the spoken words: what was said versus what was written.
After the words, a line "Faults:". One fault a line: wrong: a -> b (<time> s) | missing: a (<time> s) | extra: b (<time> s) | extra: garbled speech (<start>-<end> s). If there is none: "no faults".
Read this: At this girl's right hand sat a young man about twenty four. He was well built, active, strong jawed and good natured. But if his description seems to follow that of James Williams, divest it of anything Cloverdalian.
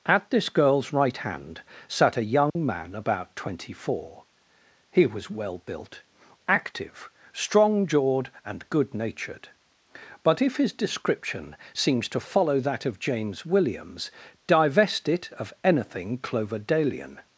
At this girl's right hand sat a young man about twenty four. He was well built, active, strong jawed and good natured. But if his description seems to follow that of James Williams, divest it of anything Cloverdalian.
Faults:
no faults